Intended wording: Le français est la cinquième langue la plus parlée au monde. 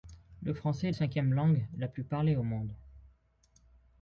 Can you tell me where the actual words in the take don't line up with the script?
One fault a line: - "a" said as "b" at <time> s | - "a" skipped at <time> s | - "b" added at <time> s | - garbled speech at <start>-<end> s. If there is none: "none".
- "la" skipped at 0.9 s